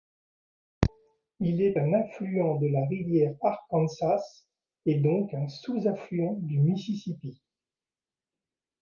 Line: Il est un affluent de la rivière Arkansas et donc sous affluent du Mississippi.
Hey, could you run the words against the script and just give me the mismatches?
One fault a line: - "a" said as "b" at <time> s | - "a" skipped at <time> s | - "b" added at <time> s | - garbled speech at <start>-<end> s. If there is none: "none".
- "un" added at 5.3 s